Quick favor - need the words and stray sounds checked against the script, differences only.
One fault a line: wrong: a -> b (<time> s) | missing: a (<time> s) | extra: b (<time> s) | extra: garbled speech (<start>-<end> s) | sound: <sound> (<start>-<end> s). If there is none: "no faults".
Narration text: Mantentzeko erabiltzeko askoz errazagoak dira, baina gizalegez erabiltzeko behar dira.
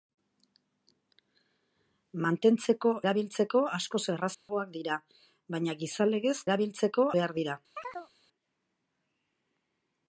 sound: dropout (4.3-4.5 s)
sound: chirp (7.8-8.1 s)